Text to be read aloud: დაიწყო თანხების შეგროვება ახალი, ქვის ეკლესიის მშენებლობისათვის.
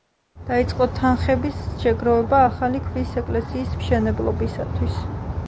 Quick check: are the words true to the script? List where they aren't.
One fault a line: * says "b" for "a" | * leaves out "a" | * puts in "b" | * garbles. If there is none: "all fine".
all fine